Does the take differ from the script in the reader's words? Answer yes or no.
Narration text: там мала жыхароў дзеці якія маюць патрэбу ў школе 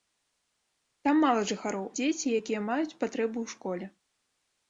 no